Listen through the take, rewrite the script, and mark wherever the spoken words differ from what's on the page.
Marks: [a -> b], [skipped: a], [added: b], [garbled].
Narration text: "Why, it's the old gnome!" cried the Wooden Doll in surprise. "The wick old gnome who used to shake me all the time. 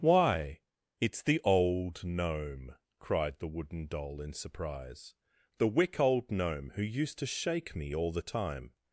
"Why, it's the old gnome!" cried the Wooden Doll in surprise. "The wick old gnome who used to shake me all the time.